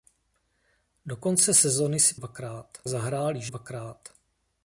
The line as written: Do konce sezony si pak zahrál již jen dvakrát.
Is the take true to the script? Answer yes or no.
no